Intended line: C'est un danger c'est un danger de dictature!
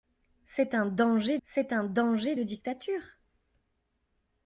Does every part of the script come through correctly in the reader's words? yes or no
yes